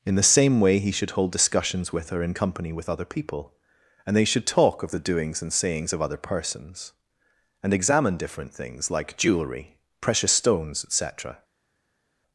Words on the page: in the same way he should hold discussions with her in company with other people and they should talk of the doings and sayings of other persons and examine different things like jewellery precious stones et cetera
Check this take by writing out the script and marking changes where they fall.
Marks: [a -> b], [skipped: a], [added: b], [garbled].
in the same way he should hold discussions with her in company with other people and they should talk of the doings and sayings of other persons and examine different things like jewellery precious stones et cetera